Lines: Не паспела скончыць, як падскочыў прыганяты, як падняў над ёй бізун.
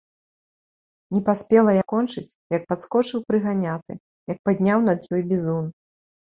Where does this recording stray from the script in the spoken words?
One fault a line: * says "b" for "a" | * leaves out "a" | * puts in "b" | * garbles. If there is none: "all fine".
all fine